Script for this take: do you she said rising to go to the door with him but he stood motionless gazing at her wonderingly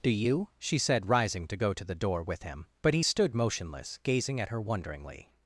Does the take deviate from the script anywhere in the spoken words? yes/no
no